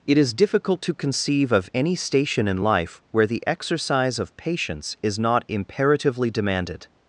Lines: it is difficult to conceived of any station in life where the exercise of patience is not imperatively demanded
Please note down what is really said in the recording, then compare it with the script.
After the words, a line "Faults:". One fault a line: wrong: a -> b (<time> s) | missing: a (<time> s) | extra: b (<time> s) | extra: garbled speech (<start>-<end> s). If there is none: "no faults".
it is difficult to conceive of any station in life where the exercise of patience is not imperatively demanded
Faults:
wrong: conceived -> conceive (0.9 s)